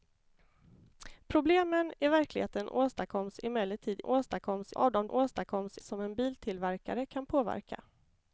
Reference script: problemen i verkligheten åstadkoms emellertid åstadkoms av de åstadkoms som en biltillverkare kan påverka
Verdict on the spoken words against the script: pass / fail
pass